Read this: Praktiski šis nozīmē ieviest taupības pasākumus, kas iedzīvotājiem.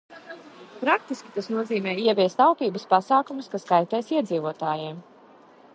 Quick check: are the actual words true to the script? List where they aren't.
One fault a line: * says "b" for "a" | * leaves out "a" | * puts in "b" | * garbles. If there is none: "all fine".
* says "tas" for "šis"
* puts in "kaitēs"